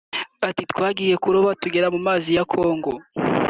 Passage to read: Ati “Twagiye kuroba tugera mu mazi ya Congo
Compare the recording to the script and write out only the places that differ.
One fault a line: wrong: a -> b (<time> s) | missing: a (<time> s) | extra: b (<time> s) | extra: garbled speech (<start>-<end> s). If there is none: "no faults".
no faults